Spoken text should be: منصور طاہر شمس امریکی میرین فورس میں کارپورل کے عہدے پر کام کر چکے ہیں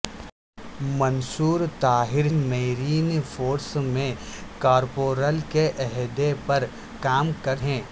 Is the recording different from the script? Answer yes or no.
yes